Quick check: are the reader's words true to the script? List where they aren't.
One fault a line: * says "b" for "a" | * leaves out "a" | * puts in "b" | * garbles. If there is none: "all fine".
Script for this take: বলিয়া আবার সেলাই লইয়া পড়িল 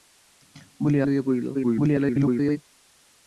* leaves out "আবার সেলাই"
* garbles